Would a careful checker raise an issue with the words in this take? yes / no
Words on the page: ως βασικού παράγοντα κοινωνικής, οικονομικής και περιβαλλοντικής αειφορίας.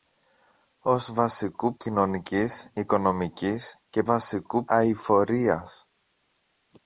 yes